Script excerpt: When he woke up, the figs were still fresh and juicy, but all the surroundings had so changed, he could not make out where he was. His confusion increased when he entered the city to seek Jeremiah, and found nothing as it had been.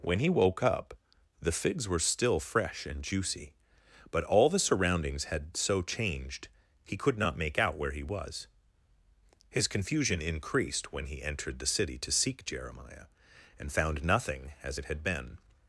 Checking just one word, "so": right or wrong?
right